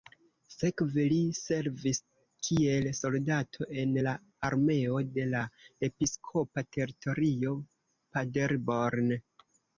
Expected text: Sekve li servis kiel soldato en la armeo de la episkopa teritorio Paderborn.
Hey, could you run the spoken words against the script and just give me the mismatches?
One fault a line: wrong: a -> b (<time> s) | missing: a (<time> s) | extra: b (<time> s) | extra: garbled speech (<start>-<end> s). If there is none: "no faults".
no faults